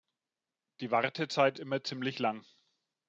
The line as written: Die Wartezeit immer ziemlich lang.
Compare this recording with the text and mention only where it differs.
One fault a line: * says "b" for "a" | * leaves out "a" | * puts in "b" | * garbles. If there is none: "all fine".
all fine